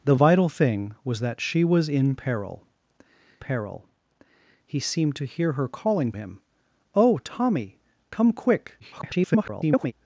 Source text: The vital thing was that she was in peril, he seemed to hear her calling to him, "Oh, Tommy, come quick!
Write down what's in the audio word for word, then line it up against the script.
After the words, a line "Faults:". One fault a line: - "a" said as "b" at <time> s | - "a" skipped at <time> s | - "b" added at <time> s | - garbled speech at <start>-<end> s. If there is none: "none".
The vital thing was that she was in peril peril, he seemed to hear her calling him, "Oh, Tommy, come quick! [garbled]
Faults:
- "peril" added at 3.4 s
- "to" skipped at 6.1 s
- garbled speech at 8.8-9.9 s